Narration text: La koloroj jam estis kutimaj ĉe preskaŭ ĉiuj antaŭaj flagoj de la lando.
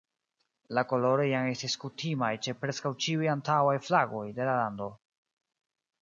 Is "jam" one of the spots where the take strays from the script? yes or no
no